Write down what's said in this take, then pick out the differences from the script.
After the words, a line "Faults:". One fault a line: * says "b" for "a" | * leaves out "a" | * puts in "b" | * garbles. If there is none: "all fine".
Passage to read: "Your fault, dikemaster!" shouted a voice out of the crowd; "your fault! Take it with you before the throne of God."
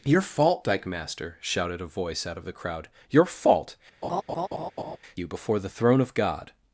"Your fault, dikemaster!" shouted a voice out of the crowd; "your fault! You before the throne of God."
Faults:
* leaves out "Take it with"